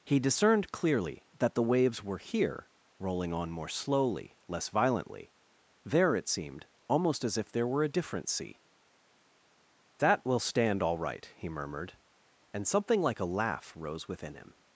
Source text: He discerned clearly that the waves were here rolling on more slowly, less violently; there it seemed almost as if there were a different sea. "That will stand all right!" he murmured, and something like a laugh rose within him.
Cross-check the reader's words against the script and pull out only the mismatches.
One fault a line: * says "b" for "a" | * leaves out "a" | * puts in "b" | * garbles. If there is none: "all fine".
all fine